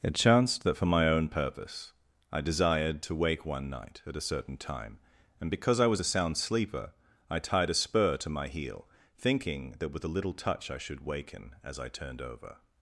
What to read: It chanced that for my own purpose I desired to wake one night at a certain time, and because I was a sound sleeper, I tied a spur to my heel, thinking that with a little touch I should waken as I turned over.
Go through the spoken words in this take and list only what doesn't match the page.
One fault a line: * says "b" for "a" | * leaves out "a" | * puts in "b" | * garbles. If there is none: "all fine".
all fine